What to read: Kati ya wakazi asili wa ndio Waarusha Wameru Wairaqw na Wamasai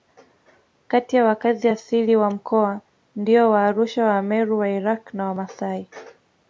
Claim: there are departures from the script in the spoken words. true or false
true